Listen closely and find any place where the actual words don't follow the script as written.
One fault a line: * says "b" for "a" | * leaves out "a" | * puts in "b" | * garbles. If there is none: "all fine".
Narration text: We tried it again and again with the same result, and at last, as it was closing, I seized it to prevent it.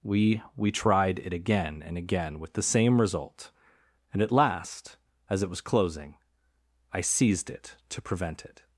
* puts in "we"